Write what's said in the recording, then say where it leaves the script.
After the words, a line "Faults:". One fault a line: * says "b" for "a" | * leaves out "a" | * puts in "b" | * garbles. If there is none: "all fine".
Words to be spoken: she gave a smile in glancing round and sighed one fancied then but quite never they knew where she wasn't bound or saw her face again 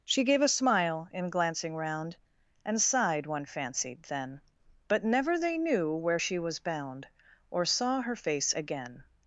she gave a smile in glancing round and sighed one fancied then but never they knew where she was bound or saw her face again
Faults:
* leaves out "quite"
* says "was" for "wasn't"